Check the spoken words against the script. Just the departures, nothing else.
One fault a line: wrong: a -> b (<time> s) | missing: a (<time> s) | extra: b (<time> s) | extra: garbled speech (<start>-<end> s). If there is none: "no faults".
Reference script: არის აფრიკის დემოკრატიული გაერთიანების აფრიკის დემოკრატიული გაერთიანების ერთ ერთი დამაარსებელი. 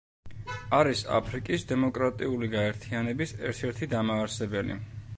missing: აფრიკის დემოკრატიული გაერთიანების (3.4 s)